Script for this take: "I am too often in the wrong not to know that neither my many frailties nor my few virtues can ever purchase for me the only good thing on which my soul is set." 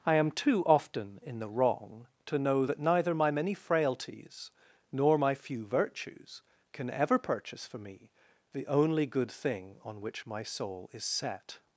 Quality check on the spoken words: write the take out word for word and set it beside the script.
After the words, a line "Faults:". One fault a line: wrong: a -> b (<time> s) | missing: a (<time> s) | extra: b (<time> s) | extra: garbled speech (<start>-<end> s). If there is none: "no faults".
"I am too often in the wrong to know that neither my many frailties nor my few virtues can ever purchase for me the only good thing on which my soul is set."
Faults:
missing: not (2.1 s)